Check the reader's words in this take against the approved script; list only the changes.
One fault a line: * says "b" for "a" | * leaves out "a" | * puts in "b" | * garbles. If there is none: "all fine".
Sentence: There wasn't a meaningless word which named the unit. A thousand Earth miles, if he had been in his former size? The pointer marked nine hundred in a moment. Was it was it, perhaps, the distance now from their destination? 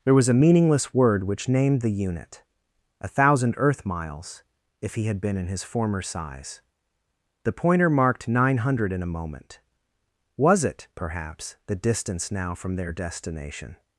* says "was" for "wasn't"
* leaves out "was it"